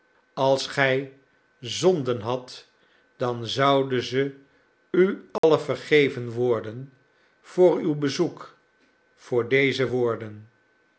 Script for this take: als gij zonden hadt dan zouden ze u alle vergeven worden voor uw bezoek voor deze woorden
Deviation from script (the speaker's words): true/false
false